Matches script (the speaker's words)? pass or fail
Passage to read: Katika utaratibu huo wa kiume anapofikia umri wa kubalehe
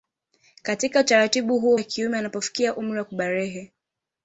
pass